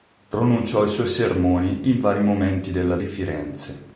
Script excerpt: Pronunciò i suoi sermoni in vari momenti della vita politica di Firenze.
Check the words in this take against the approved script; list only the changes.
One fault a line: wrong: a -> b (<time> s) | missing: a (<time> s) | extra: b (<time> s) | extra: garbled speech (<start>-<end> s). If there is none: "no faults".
missing: vita politica (3.0 s)